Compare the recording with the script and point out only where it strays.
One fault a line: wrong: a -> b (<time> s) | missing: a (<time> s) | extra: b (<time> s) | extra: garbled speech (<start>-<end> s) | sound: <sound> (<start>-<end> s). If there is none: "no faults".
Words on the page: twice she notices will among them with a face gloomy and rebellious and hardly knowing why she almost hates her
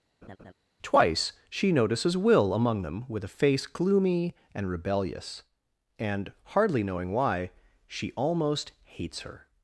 sound: laugh (0.2-0.5 s)